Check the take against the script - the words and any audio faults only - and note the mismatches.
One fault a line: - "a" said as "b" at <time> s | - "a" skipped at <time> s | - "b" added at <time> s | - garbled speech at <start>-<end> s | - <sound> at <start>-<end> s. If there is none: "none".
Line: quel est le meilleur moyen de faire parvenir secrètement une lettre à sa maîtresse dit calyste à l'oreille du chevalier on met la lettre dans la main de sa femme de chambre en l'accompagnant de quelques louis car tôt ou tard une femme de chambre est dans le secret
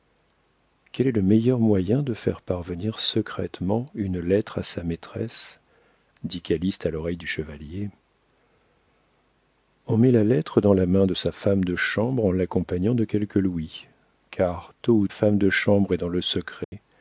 - "tard une" skipped at 15.1 s
- dropout at 16.6-16.7 s